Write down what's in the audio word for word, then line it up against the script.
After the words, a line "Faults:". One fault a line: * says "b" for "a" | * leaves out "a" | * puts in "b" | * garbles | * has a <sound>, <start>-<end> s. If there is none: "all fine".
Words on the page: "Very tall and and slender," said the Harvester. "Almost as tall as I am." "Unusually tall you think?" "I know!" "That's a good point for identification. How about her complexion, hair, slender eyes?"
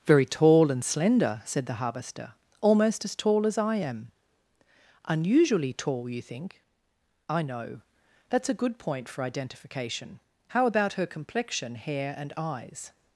"Very tall and slender," said the Harvester. "Almost as tall as I am." "Unusually tall you think?" "I know!" "That's a good point for identification. How about her complexion, hair, and eyes?"
Faults:
* leaves out "and"
* says "and" for "slender"